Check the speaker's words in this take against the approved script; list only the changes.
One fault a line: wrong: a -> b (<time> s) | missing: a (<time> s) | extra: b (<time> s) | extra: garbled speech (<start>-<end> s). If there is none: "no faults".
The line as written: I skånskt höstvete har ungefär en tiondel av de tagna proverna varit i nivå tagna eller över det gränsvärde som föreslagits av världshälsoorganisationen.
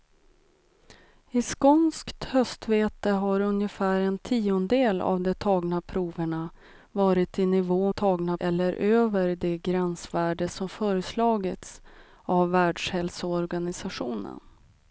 no faults